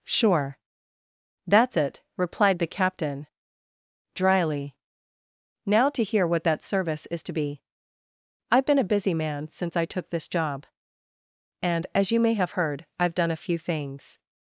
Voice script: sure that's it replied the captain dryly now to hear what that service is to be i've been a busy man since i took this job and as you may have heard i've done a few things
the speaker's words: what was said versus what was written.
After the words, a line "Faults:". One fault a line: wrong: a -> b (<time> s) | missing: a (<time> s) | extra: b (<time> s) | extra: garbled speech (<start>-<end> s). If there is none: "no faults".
sure that's it replied the captain dryly now to hear what that service is to be i've been a busy man since i took this job and as you may have heard i've done a few things
Faults:
no faults